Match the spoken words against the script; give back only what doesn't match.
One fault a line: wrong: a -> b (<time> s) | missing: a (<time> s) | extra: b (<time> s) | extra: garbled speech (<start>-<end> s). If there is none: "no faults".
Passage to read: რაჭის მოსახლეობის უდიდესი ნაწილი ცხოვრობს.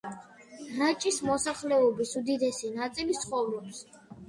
no faults